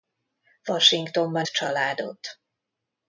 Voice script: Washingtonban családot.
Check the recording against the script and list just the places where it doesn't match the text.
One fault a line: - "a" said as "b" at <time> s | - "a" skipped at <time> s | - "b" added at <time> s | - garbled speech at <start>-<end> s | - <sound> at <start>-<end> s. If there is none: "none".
none